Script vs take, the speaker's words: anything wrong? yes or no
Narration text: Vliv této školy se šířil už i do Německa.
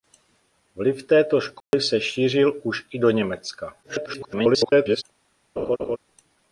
yes